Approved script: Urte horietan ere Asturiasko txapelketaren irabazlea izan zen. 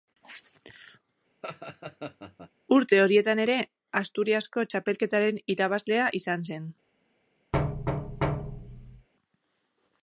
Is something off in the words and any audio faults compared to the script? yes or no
yes